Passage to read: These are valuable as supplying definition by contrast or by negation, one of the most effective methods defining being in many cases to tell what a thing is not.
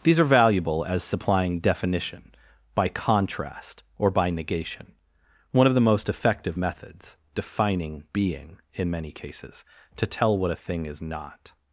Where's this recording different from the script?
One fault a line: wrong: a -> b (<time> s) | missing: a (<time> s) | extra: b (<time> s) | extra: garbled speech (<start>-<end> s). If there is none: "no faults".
no faults